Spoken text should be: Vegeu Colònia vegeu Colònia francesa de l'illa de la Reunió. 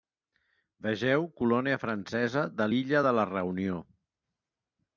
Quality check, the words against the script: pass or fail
fail